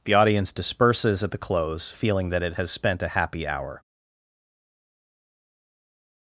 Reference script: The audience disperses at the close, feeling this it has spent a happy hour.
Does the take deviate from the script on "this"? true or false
true